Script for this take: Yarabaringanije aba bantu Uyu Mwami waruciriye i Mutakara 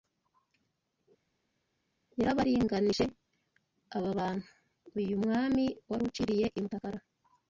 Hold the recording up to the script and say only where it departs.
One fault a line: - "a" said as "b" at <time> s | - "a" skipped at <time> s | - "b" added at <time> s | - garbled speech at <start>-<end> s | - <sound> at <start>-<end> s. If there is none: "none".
none